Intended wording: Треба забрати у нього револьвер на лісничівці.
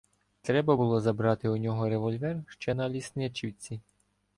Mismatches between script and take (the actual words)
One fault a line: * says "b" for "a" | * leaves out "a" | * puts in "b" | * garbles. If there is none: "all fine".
* puts in "було"
* puts in "ще"